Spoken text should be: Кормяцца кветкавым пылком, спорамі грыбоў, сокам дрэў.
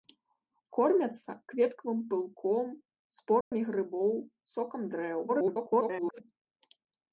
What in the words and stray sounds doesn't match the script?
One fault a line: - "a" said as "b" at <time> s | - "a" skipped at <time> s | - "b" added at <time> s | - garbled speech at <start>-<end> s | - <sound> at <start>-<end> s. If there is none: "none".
- dropout at 3.4-3.5 s
- garbled speech at 5.3-6.2 s